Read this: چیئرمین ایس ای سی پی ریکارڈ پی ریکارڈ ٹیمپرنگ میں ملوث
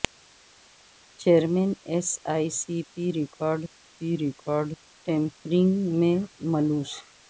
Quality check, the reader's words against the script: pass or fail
pass